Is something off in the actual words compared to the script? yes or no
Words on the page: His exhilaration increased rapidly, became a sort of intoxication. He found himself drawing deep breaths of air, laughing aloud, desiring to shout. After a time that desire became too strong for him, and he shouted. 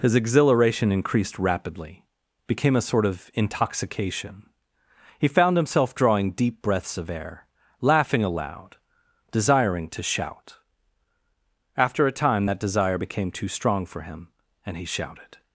no